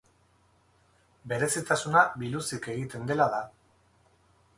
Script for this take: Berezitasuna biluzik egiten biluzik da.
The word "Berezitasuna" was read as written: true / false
true